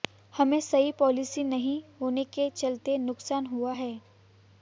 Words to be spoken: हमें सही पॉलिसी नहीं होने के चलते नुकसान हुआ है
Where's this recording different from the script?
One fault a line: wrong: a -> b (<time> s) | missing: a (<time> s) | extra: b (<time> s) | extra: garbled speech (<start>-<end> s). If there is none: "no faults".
no faults